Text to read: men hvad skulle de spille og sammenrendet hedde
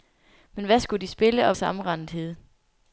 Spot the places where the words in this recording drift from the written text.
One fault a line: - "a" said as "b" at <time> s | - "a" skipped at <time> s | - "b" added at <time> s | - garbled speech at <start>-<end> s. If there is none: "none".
none